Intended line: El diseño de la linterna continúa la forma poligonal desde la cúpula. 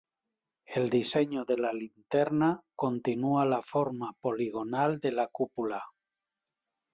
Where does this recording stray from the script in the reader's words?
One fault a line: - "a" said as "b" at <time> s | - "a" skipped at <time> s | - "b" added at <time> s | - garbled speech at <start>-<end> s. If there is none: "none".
- "desde" said as "de" at 5.0 s